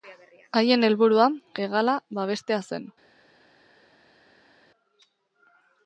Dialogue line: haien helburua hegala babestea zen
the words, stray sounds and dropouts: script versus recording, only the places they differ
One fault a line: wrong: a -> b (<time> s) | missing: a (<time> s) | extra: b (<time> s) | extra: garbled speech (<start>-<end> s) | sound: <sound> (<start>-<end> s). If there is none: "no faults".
no faults